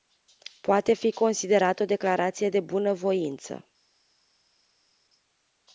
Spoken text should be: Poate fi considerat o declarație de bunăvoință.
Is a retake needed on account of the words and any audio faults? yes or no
no